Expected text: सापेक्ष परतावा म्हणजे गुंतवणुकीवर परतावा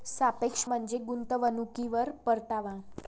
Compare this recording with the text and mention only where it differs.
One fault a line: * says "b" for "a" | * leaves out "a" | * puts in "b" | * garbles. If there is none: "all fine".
* leaves out "परतावा"